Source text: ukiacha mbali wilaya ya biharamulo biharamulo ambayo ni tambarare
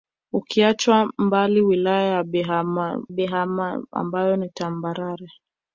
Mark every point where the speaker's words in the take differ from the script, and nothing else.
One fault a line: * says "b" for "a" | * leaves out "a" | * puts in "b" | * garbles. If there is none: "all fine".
all fine